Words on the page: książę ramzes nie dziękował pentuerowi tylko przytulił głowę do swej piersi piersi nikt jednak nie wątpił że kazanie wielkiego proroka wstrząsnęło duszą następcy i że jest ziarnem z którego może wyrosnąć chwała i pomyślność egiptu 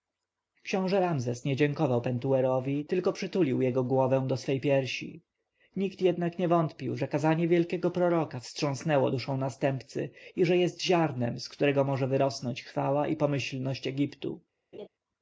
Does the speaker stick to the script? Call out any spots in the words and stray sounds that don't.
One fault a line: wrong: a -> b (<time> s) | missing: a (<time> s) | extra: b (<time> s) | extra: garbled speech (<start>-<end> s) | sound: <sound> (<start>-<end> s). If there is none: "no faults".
extra: jego (3.6 s)
missing: piersi (5.2 s)
sound: laugh (14.7-14.9 s)